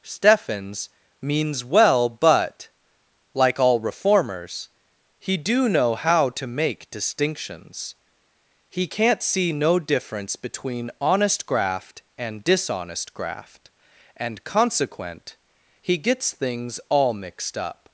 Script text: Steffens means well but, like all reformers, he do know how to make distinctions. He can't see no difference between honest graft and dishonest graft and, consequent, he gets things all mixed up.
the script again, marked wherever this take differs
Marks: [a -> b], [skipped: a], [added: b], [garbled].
Steffens means well but, like all reformers, he do know how to make distinctions. He can't see no difference between honest graft and dishonest graft and, consequent, he gets things all mixed up.